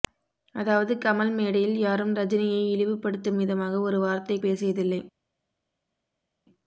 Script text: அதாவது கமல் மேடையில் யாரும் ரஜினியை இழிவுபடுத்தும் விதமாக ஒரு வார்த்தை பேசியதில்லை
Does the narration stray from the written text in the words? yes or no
no